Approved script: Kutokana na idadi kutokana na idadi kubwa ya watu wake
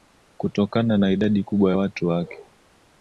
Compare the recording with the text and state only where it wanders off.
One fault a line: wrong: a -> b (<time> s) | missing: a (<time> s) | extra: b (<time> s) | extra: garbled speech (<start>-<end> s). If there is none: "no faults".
missing: kutokana na idadi (1.4 s)